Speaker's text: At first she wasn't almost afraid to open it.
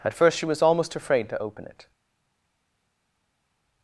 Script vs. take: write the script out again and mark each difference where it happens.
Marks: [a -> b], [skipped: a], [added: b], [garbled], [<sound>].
At first she [wasn't -> was] almost afraid to open it.